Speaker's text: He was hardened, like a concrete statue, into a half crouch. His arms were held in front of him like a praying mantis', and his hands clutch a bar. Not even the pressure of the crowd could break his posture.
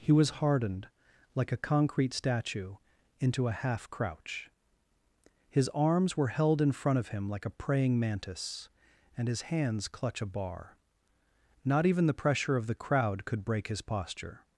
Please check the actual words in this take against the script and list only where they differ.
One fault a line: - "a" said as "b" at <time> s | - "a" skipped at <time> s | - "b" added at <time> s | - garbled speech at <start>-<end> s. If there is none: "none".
none